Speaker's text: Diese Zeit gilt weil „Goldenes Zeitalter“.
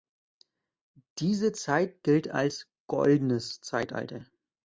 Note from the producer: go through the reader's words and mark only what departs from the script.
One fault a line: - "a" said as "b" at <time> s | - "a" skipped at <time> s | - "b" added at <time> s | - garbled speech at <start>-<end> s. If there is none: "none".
- "weil" said as "als" at 2.3 s